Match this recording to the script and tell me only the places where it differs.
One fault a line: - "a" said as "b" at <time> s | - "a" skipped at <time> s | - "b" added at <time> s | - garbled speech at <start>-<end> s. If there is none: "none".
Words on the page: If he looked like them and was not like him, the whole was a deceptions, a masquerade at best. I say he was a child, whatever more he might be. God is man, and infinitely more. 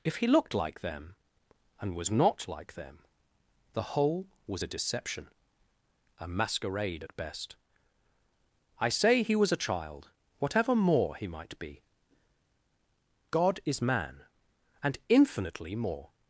- "him" said as "them" at 2.7 s
- "deceptions" said as "deception" at 4.7 s